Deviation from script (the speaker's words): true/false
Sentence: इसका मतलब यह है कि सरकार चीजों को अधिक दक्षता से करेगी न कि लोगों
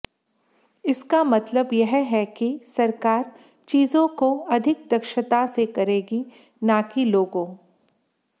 false